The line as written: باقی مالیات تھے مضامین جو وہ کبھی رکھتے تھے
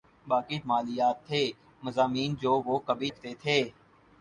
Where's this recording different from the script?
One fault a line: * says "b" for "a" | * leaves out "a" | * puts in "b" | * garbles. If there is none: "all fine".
all fine